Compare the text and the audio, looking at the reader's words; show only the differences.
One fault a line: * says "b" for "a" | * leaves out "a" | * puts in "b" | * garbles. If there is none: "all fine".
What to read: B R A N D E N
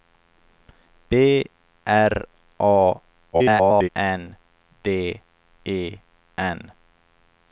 * garbles